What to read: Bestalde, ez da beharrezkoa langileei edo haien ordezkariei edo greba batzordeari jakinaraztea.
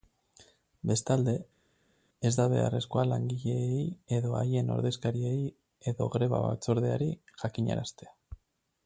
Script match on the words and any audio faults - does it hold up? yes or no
yes